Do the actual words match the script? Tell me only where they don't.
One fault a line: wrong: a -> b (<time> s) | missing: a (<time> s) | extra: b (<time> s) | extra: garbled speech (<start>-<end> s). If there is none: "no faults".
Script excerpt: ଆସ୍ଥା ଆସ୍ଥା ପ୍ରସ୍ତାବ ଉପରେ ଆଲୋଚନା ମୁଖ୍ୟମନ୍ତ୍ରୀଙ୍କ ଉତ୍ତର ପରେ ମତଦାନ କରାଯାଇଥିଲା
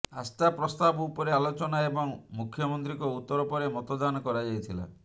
missing: ଆସ୍ଥା (0.5 s)
extra: ଏବଂ (1.9 s)